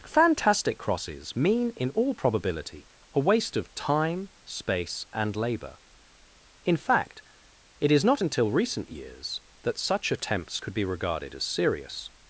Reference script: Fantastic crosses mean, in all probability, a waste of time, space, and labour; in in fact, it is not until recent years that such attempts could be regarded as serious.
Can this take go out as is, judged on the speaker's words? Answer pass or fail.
fail